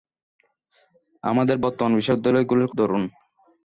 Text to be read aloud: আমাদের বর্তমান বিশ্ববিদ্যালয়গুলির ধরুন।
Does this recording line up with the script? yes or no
yes